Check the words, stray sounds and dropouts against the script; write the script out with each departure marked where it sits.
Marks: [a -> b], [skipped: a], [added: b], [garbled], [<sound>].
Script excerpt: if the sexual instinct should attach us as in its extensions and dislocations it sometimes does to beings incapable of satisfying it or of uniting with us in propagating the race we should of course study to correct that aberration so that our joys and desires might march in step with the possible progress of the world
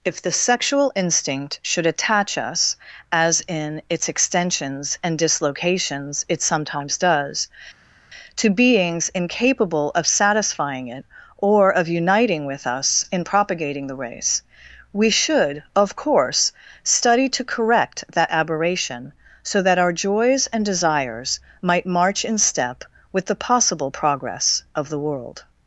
if the sexual instinct should attach us as in its extensions and dislocations it sometimes does to beings incapable of satisfying it or of uniting with us in propagating the race we should of course study to correct that aberration so that our joys and desires might march in step with the possible progress of the world